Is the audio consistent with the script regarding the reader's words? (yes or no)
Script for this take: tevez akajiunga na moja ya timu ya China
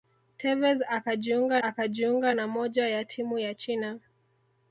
no